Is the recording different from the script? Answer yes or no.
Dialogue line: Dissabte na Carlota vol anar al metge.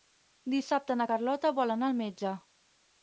no